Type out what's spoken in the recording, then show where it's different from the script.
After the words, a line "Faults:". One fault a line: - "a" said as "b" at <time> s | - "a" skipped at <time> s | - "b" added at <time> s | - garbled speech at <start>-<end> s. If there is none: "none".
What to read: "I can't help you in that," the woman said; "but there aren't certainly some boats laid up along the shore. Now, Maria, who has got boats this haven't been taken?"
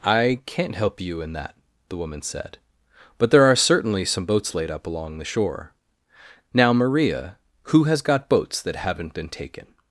"I can't help you in that," the woman said; "but there are certainly some boats laid up along the shore. Now, Maria, who has got boats that haven't been taken?"
Faults:
- "aren't" said as "are" at 3.4 s
- "this" said as "that" at 8.6 s